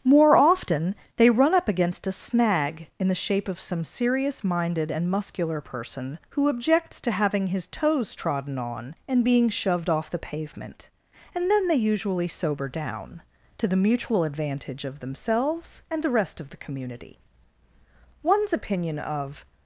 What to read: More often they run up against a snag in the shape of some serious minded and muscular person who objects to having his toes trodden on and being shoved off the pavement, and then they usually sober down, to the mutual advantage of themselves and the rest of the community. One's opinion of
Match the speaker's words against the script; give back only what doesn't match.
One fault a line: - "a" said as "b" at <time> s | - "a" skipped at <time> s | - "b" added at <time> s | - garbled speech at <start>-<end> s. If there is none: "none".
none